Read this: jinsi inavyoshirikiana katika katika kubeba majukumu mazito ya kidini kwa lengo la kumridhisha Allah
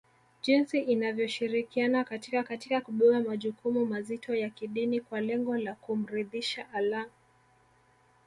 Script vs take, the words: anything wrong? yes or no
no